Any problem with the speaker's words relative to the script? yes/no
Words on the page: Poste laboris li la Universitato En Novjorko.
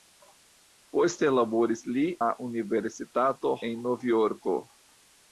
no